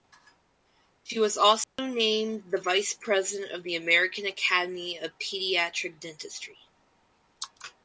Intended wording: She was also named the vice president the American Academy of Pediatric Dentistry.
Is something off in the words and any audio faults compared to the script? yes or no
yes